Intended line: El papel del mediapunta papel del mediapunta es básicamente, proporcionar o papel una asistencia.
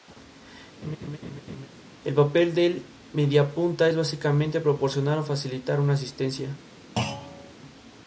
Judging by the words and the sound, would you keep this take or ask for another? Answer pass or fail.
fail